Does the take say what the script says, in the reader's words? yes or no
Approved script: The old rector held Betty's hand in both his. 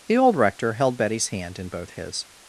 yes